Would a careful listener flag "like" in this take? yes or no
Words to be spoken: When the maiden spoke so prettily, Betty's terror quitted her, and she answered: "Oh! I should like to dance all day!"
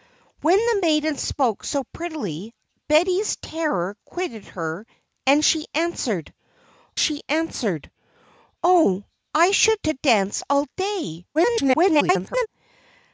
yes